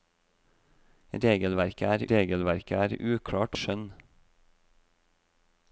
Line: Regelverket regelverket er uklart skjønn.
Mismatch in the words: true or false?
false